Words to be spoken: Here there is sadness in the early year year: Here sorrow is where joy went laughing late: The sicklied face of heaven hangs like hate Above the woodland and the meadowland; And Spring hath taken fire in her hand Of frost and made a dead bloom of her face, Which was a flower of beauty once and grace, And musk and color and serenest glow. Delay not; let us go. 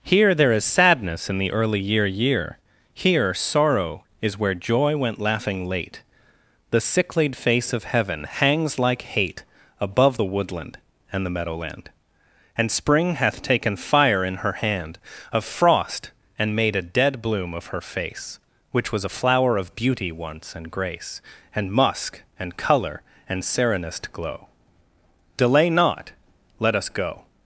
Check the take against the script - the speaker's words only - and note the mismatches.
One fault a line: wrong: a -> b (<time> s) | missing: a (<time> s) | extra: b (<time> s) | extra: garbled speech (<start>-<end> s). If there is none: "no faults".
no faults